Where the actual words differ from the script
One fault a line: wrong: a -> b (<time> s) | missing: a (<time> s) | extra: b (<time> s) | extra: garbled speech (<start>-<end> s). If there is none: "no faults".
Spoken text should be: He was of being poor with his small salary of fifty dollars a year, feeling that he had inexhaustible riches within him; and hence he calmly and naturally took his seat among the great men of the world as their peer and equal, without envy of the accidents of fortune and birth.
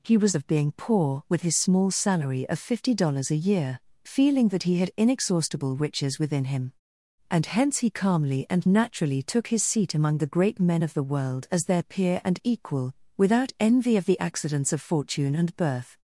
no faults